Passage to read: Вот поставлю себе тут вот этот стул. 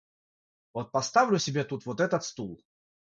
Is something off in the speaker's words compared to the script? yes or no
no